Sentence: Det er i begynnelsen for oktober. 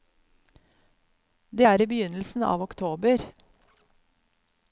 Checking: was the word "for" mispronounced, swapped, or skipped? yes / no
yes